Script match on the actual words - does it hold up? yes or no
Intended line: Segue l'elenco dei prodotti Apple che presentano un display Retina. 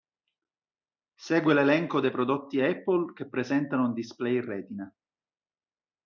yes